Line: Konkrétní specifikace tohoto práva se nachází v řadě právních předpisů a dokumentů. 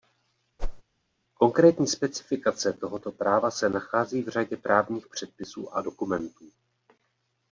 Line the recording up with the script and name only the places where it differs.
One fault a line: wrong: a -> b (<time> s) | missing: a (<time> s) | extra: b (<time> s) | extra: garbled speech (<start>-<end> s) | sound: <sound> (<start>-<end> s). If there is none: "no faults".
sound: whoosh (0.6-0.8 s)